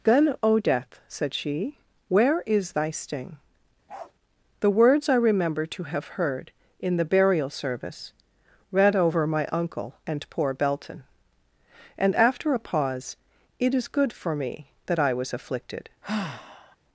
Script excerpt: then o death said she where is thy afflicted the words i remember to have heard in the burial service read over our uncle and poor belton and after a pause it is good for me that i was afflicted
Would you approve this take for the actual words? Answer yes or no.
no